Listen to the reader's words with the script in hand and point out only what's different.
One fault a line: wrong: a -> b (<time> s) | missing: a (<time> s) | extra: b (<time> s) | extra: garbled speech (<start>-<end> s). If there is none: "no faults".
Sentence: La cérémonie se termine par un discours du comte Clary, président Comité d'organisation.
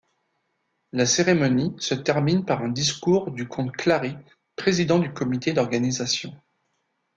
extra: du (5.0 s)